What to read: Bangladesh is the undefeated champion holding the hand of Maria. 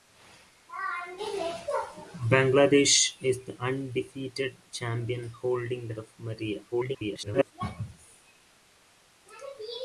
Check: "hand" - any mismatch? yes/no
yes